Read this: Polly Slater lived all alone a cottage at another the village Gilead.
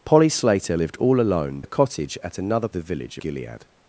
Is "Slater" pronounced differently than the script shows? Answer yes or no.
no